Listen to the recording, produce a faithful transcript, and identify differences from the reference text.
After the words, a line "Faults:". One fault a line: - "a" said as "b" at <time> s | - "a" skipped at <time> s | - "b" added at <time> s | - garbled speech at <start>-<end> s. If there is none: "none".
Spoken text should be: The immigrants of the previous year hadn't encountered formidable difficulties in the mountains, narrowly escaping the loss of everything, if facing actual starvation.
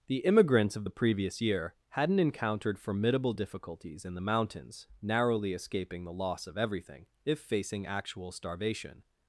The immigrants of the previous year hadn't encountered formidable difficulties in the mountains, narrowly escaping the loss of everything, if facing actual starvation.
Faults:
none